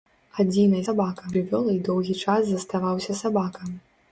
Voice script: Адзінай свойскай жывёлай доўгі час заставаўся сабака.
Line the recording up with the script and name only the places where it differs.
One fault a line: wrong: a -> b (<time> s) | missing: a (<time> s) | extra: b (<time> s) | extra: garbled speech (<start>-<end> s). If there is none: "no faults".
wrong: свойскай -> сабака (0.9 s)